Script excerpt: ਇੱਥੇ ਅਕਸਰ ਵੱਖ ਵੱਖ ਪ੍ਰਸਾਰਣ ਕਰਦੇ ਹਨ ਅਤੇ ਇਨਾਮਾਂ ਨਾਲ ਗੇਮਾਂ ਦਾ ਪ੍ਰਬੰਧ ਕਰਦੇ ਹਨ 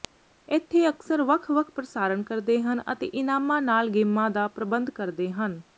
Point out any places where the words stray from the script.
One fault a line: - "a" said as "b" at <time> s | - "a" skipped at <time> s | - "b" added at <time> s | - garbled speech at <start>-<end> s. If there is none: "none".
none